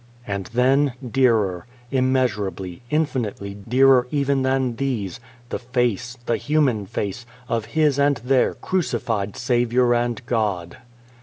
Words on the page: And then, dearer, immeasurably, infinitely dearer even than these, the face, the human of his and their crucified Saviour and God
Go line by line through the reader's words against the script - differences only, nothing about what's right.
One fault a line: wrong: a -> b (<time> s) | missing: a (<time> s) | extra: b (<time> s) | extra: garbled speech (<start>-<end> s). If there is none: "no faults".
extra: face (6.9 s)